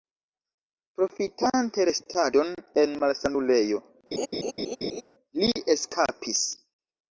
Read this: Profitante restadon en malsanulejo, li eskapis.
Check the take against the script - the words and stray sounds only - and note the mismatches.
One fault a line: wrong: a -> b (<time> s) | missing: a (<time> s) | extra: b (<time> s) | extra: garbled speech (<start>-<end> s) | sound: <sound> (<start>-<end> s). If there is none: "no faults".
sound: laugh (4.1-5.0 s)